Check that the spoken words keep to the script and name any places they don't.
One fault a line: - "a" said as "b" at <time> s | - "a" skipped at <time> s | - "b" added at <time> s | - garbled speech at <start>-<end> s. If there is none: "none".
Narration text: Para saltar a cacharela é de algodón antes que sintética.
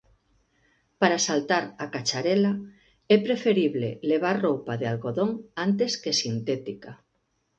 - "preferible levar roupa" added at 3.3 s